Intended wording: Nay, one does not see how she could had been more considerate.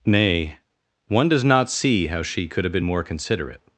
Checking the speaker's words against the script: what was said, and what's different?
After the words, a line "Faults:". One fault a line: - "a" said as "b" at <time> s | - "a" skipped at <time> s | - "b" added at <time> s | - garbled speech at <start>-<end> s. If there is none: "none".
Nay, one does not see how she could have been more considerate.
Faults:
- "had" said as "have" at 2.6 s